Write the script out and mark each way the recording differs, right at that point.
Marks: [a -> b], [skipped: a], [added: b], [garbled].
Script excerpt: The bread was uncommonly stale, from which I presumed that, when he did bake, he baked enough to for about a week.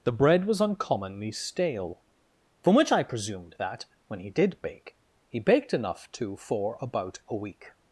The bread was uncommonly stale, from which I presumed that, when he did bake, he baked enough to for about a week.